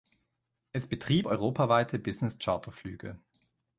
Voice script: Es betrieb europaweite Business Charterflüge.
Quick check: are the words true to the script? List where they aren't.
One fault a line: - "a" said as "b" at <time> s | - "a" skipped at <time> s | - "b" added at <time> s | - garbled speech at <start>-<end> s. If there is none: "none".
none